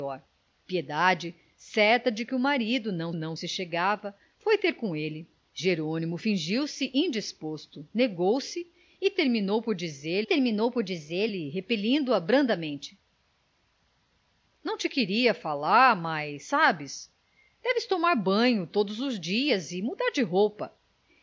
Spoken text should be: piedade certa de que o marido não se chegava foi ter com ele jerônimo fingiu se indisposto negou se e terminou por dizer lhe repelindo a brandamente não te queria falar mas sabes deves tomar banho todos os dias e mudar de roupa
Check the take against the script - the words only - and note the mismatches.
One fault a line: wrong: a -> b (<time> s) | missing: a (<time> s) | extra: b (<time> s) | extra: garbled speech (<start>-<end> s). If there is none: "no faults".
extra: não (3.1 s)
extra: terminou por dizer (10.2 s)